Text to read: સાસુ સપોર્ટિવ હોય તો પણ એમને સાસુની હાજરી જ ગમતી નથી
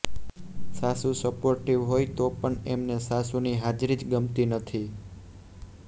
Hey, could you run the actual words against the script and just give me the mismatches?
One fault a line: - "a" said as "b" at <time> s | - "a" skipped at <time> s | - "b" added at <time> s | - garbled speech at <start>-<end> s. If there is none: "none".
none